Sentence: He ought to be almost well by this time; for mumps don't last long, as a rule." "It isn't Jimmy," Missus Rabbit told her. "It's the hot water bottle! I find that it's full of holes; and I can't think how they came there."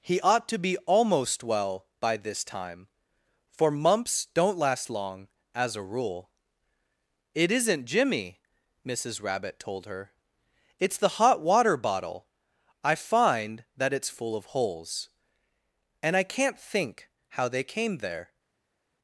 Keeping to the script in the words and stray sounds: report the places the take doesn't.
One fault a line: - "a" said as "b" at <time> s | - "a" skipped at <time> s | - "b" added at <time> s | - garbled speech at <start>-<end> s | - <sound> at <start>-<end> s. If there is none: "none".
none